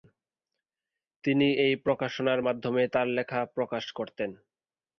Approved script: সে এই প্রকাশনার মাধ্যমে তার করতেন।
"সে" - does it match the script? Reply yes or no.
no